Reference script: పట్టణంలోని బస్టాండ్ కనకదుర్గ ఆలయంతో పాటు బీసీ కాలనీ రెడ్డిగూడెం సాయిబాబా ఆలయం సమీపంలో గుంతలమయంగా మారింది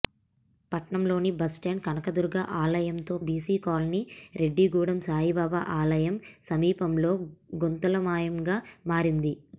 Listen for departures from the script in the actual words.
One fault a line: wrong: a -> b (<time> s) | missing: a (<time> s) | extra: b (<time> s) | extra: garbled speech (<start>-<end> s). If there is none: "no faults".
missing: పాటు (3.1 s)